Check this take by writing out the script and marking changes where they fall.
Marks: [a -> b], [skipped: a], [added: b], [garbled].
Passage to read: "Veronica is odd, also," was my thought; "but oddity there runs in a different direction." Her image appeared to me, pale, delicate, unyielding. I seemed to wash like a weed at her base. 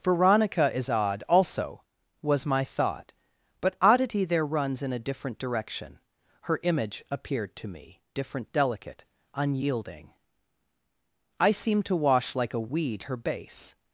"Veronica is odd, also," was my thought; "but oddity there runs in a different direction." Her image appeared to me, [pale, -> different] delicate, unyielding. I seemed to wash like a weed [skipped: at] her base.